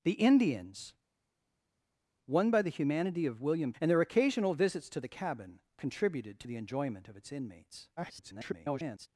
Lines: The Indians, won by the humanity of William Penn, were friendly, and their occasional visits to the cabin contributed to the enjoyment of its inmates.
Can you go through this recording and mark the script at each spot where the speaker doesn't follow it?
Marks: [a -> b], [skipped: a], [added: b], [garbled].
The Indians, won by the humanity of William [skipped: Penn, were friendly,] and their occasional visits to the cabin contributed to the enjoyment of its inmates. [garbled]